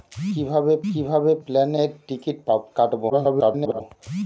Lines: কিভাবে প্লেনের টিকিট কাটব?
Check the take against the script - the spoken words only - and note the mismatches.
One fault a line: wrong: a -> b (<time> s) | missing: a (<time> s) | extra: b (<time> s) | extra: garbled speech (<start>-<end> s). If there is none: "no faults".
extra: কিভাবে (0.9 s)
extra: garbled speech (3.1-3.8 s)